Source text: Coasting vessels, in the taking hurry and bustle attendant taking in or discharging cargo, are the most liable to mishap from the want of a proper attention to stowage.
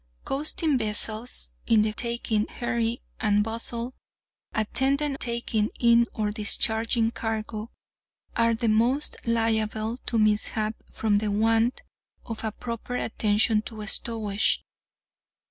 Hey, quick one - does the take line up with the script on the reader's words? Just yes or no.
yes